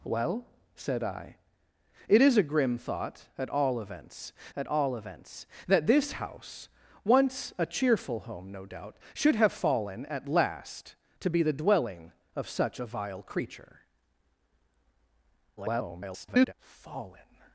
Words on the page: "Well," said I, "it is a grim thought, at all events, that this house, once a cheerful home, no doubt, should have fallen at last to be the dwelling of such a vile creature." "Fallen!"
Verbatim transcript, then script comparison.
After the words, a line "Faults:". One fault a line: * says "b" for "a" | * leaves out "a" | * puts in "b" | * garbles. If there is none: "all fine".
"Well," said I, "it is a grim thought, at all events at all events, that this house, once a cheerful home, no doubt, should have fallen at last to be the dwelling of such a vile creature." [garbled] "Fallen!"
Faults:
* puts in "at all events"
* garbles